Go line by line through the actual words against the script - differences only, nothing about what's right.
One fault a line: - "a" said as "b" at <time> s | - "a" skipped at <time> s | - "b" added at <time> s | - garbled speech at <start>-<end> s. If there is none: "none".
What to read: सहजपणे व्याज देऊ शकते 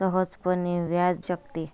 - "देऊ" skipped at 1.2 s